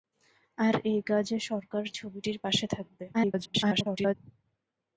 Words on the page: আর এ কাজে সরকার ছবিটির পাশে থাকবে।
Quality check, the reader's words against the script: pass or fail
fail